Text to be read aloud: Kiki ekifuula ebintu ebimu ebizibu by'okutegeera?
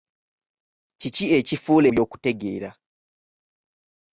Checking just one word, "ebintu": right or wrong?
wrong